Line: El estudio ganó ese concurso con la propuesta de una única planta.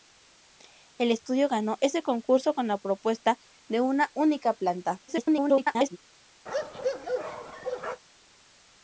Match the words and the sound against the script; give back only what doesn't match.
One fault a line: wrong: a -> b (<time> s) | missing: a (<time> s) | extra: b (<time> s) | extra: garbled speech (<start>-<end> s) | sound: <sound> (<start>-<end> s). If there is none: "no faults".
extra: garbled speech (5.1-6.0 s)
sound: bark (6.5-8.0 s)